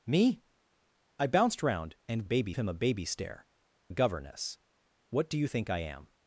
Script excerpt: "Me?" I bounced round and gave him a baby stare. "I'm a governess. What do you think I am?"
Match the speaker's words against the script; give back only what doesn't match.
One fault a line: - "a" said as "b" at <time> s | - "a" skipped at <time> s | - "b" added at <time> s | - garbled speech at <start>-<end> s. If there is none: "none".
- "gave" said as "baby" at 2.2 s
- "I'm" skipped at 3.5 s